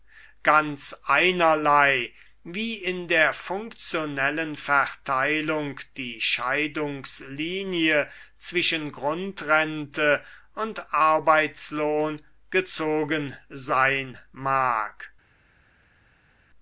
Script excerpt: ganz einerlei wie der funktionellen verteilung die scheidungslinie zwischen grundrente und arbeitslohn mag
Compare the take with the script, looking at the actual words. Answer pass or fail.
fail